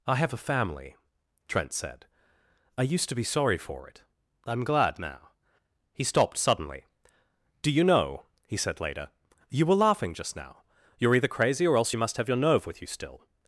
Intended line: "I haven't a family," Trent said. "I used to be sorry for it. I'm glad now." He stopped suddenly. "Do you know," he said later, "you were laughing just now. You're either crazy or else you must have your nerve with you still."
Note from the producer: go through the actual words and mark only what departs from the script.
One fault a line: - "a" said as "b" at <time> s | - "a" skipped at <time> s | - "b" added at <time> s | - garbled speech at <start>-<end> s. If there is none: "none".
- "haven't" said as "have" at 0.1 s